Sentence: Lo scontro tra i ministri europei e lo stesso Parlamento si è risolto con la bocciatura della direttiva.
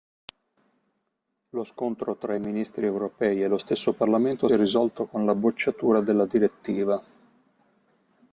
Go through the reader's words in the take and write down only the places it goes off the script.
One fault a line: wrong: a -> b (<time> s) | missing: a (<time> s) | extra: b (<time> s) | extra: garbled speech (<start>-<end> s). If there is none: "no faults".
missing: si (4.5 s)